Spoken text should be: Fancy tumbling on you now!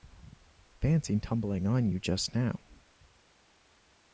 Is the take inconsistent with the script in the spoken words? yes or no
yes